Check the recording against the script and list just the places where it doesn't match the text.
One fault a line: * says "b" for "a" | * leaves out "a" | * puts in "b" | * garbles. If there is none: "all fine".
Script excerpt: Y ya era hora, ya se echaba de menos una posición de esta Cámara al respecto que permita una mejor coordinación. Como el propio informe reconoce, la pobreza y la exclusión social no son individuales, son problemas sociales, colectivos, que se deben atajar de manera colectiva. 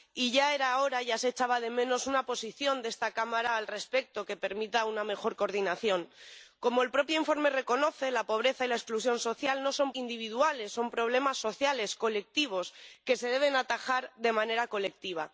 all fine